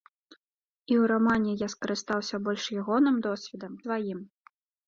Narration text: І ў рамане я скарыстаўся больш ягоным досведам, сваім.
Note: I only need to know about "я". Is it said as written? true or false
true